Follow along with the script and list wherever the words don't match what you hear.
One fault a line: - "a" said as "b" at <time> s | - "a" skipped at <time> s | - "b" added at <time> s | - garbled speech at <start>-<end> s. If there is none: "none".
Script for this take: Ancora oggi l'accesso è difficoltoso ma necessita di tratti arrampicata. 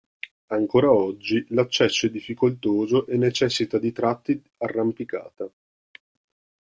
- "ma" said as "e" at 3.0 s